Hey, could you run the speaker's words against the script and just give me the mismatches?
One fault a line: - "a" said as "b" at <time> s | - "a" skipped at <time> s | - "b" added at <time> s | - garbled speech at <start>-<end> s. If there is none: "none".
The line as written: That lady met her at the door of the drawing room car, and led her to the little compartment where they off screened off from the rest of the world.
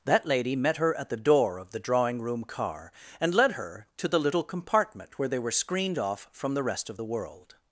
- "off" said as "were" at 5.4 s